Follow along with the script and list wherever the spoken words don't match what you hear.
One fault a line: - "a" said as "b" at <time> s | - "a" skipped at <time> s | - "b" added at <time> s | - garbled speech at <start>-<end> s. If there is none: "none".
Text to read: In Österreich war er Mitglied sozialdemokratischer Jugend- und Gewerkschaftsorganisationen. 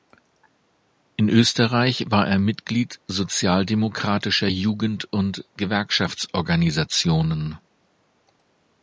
none